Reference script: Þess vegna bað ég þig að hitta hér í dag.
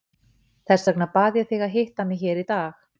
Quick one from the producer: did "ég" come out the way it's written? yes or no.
yes